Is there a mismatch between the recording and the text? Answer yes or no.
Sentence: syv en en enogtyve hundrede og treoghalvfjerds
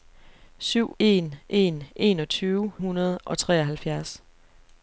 no